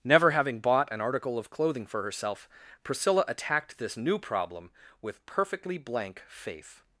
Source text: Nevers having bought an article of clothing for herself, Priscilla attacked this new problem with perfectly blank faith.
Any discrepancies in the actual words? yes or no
yes